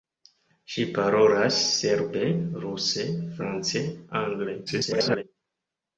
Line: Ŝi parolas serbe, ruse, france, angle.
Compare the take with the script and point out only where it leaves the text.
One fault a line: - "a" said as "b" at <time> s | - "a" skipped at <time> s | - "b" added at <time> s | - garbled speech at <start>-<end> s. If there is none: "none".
- garbled speech at 4.7-5.2 s